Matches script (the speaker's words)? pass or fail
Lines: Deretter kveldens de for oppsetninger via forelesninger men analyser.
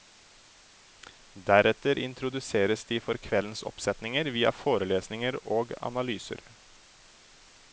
fail